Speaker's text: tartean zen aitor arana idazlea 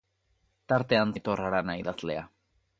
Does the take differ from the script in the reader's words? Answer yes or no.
yes